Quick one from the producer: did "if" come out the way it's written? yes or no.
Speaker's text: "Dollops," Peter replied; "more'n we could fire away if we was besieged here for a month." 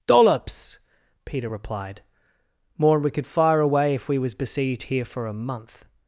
yes